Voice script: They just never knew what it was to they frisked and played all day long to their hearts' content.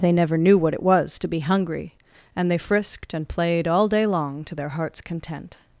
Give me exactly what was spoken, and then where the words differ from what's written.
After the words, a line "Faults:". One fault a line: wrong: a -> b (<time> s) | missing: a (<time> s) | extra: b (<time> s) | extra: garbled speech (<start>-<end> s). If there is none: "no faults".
They never knew what it was to be hungry, and they frisked and played all day long to their hearts' content.
Faults:
missing: just (0.1 s)
extra: be hungry and (1.3 s)